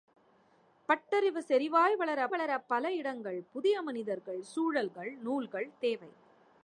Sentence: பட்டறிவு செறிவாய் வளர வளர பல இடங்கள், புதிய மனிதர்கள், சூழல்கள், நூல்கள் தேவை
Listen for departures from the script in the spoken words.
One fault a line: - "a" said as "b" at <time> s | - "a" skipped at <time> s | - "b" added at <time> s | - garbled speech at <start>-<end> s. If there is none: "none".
none